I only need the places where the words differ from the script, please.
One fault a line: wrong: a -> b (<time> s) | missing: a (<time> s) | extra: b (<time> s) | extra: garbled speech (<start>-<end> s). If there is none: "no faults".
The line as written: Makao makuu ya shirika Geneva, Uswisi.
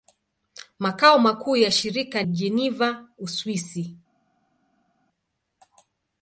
no faults